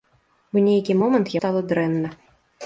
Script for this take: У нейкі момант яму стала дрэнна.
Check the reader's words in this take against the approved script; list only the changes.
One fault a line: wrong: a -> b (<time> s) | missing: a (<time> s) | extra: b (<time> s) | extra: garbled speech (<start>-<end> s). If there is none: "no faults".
missing: яму (1.4 s)